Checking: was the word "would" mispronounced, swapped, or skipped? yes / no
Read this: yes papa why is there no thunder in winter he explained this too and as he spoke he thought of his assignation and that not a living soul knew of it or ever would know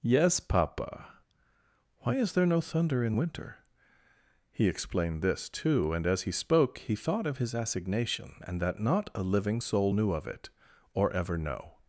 yes